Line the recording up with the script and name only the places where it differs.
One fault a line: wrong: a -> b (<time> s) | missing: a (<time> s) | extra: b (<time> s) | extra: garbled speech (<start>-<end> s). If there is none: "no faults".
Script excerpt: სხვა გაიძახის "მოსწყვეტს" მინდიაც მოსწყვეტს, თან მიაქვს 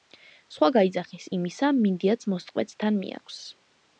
wrong: მოსწყვეტს -> იმისა (1.4 s)